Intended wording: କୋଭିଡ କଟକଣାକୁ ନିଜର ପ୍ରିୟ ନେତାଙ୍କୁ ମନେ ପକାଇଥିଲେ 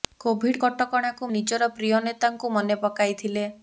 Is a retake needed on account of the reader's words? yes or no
no